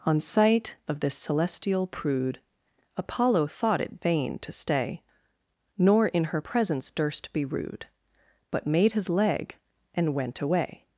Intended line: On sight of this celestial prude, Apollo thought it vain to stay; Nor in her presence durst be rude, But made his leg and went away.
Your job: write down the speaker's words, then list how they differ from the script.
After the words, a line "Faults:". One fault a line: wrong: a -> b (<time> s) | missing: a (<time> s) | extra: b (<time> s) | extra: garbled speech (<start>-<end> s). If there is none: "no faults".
On sight of this celestial prude, Apollo thought it vain to stay; Nor in her presence durst be rude, But made his leg and went away.
Faults:
no faults